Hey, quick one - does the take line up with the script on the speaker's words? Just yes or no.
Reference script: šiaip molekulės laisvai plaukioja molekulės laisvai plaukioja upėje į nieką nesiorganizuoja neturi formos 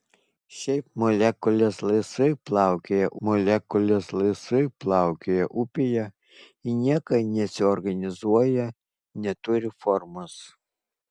yes